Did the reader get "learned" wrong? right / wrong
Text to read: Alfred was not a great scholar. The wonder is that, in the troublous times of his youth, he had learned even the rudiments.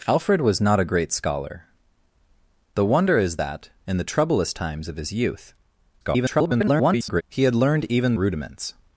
right